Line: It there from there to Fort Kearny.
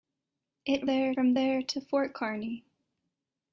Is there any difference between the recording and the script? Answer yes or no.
no